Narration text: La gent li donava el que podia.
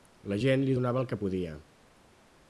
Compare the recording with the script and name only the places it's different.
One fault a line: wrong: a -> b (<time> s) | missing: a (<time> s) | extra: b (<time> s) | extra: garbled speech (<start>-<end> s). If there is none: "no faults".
no faults